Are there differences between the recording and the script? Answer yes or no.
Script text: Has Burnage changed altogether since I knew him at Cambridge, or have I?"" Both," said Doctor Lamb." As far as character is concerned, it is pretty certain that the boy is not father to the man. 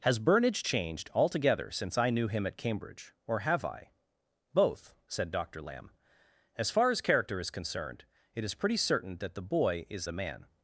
yes